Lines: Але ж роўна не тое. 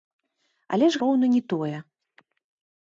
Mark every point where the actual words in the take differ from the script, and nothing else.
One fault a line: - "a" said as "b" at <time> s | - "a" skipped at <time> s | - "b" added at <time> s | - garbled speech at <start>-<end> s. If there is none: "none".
none